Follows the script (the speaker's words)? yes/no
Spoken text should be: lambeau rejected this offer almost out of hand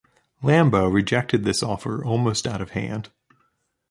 yes